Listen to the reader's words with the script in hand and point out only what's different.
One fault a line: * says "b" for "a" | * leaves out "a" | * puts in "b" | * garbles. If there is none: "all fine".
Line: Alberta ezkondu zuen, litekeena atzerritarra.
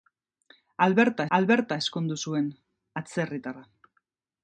* puts in "alberta"
* leaves out "litekeena"